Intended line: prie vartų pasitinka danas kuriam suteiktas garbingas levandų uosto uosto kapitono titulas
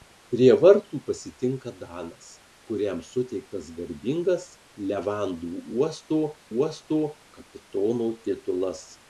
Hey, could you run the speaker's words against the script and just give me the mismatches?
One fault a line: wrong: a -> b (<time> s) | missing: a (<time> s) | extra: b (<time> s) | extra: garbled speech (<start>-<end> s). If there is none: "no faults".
no faults